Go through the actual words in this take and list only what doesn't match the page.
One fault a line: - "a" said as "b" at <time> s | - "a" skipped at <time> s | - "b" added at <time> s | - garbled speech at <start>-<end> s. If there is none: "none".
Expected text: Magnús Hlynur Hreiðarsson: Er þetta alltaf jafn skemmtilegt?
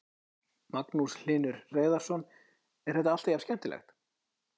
none